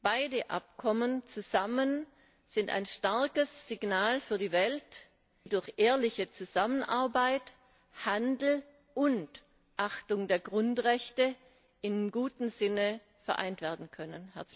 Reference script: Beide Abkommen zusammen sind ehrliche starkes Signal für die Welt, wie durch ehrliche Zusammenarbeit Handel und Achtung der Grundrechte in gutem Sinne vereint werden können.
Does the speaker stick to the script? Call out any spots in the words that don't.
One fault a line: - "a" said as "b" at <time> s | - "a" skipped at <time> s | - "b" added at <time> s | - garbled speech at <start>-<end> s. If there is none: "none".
- "ehrliche" said as "ein" at 2.7 s